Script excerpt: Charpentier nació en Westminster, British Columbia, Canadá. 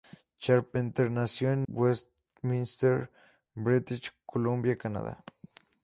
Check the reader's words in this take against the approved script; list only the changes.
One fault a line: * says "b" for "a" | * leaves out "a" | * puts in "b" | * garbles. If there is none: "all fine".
all fine